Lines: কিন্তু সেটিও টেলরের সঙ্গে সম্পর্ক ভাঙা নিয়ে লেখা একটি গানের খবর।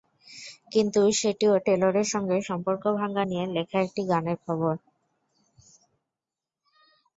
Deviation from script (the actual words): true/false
false